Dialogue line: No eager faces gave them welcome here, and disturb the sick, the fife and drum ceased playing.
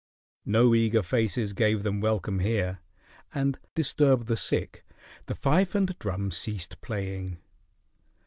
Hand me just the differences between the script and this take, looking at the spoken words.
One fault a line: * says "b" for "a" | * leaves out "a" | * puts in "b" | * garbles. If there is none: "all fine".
all fine